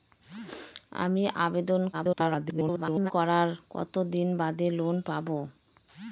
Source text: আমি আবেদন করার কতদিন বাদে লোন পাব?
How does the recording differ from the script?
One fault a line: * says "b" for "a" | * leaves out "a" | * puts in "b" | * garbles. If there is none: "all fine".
* garbles